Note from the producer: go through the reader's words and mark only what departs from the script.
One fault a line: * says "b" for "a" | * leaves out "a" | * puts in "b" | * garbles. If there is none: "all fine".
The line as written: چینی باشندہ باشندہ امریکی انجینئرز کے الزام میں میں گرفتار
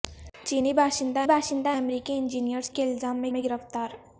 all fine